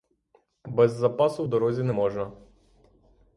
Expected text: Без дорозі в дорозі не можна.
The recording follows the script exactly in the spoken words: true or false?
false